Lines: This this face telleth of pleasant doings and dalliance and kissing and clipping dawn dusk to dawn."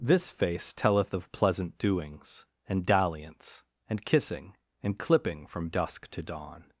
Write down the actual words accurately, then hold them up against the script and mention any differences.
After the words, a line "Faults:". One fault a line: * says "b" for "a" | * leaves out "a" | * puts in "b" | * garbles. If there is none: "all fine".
This face telleth of pleasant doings and dalliance and kissing and clipping from dusk to dawn."
Faults:
* leaves out "this"
* says "from" for "dawn"